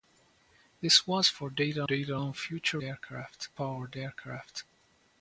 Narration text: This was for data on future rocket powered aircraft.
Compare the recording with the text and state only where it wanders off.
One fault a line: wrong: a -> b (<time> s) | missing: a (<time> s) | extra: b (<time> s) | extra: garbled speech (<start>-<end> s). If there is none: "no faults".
extra: data (1.8 s)
wrong: rocket -> aircraft (2.8 s)